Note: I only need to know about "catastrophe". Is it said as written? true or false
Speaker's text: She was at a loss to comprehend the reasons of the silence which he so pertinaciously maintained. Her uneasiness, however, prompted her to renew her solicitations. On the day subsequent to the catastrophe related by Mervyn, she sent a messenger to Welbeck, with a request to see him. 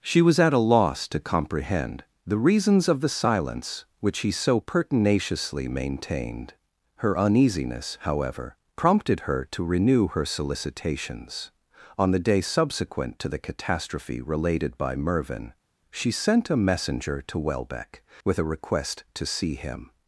true